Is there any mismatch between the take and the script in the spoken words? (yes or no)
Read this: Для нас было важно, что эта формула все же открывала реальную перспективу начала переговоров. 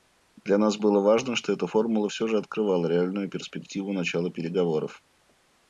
no